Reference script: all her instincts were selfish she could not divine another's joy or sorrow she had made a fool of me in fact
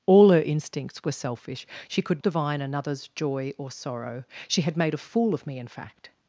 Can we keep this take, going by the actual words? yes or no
no